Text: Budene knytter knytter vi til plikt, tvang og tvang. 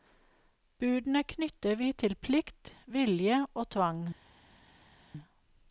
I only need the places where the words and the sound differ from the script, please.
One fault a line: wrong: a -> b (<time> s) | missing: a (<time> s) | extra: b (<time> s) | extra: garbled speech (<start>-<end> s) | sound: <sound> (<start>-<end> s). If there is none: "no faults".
missing: knytter (1.8 s)
wrong: tvang -> vilje (3.0 s)